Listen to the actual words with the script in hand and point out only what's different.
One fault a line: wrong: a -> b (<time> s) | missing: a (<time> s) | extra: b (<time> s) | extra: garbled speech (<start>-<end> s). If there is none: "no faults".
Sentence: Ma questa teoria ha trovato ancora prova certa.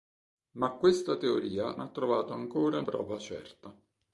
no faults